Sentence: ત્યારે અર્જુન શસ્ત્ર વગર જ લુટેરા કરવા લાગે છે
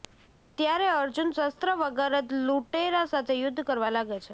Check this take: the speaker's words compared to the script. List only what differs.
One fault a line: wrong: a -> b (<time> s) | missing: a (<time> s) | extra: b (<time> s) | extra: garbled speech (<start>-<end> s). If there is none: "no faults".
extra: સાથે યુદ્ધ (3.1 s)